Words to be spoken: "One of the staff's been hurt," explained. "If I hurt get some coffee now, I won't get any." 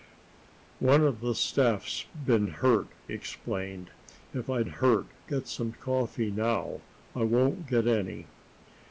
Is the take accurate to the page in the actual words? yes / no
yes